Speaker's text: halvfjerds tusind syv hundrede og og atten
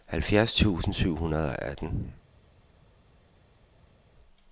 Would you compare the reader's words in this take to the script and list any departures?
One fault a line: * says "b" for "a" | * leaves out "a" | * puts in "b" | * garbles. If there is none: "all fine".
* leaves out "og"